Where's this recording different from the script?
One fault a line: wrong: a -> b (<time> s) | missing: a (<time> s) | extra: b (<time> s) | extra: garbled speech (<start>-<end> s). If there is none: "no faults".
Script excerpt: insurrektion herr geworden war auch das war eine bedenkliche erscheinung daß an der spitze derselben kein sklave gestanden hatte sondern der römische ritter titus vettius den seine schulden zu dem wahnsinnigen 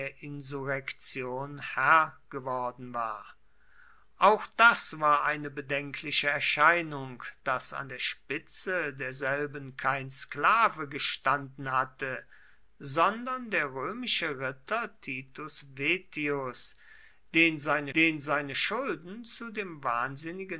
extra: den seine (17.9 s)